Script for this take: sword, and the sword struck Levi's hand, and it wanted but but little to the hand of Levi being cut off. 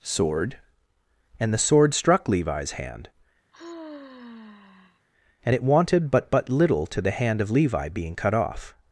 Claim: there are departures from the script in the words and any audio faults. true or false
true